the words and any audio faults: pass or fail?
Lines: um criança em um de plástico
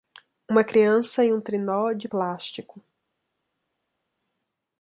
fail